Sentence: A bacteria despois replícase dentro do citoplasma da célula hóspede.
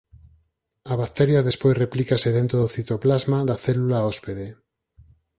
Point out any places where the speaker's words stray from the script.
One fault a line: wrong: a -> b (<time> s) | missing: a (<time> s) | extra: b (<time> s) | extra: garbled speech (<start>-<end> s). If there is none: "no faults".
no faults